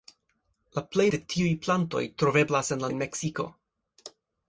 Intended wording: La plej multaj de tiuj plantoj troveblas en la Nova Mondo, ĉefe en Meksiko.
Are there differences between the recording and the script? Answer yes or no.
yes